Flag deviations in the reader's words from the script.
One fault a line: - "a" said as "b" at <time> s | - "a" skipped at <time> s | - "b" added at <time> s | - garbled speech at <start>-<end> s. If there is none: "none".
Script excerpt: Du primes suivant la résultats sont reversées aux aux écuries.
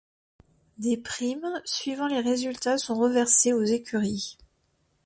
- "Du" said as "Des" at 0.8 s
- "la" said as "les" at 2.1 s
- "aux" skipped at 3.6 s